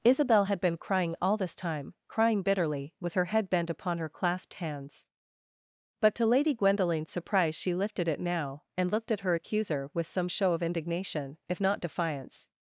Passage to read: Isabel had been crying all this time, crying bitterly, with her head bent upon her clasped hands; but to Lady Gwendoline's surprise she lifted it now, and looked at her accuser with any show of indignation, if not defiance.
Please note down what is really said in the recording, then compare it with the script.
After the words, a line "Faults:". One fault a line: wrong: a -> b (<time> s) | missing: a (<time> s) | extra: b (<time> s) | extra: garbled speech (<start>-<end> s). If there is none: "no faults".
Isabel had been crying all this time, crying bitterly, with her head bent upon her clasped hands; but to Lady Gwendoline's surprise she lifted it now, and looked at her accuser with some show of indignation, if not defiance.
Faults:
wrong: any -> some (10.1 s)